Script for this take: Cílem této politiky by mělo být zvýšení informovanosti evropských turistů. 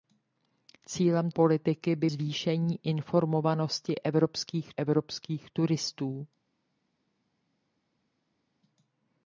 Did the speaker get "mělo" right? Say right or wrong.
wrong